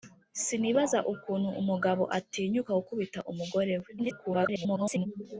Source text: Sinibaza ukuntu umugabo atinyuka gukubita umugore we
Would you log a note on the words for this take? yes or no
yes